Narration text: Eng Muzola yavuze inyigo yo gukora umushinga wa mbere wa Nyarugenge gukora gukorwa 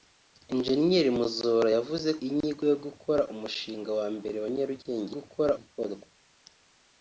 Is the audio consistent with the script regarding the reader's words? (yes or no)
yes